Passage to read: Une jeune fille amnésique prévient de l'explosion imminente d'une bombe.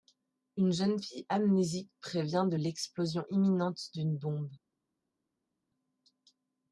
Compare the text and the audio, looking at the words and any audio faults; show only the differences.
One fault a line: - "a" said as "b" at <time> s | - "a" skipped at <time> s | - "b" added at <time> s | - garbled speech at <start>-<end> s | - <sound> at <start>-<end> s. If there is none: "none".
none